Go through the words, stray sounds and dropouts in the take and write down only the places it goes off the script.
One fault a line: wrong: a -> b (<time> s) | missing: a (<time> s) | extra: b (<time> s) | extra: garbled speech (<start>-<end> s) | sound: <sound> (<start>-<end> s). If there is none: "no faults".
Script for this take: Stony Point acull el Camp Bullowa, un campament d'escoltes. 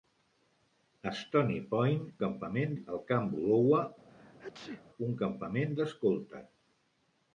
wrong: acull -> campament (2.2 s)
sound: sneeze (4.1-4.9 s)